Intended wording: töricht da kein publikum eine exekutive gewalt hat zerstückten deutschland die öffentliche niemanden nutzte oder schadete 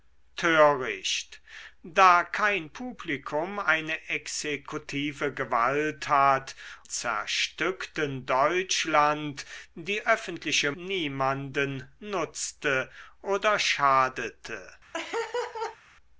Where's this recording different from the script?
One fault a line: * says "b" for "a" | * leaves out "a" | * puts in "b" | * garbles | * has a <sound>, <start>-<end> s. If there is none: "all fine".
* has a laugh, 14.9-15.8 s